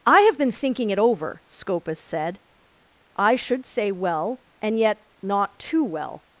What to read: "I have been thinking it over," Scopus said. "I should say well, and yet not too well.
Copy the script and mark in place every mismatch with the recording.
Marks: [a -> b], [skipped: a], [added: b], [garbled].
"I have been thinking it over," Scopus said. "I should say well, and yet not too well.